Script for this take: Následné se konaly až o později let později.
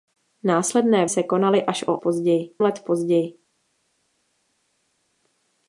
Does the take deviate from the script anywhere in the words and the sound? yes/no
no